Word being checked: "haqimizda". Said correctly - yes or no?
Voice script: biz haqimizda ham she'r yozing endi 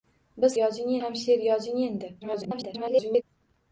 no